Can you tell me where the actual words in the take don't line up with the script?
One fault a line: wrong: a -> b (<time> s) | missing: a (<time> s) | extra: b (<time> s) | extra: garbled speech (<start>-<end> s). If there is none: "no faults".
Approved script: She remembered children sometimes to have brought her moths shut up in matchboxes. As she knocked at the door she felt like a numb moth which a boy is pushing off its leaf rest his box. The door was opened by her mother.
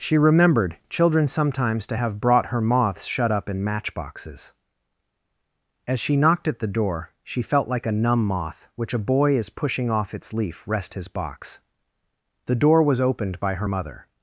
no faults